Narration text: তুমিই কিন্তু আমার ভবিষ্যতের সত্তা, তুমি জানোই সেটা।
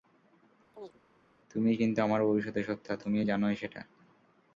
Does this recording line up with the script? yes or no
yes